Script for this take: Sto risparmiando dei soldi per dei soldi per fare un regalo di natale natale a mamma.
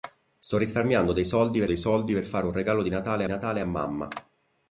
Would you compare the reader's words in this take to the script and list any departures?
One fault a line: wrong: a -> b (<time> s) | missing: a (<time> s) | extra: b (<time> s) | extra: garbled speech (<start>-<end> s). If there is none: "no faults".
no faults